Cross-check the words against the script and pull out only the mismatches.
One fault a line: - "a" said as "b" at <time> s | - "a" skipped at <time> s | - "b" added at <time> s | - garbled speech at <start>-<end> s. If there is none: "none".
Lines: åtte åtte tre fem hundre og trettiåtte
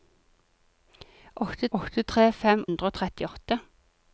none